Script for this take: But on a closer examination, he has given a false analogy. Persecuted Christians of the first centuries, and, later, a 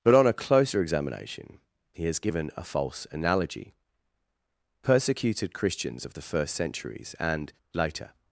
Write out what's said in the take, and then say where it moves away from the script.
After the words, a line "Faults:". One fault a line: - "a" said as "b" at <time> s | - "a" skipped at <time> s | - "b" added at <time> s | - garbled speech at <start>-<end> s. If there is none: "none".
But on a closer examination, he has given a false analogy. Persecuted Christians of the first centuries, and, later,
Faults:
- "a" skipped at 8.1 s